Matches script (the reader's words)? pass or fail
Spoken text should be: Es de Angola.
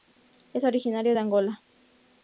fail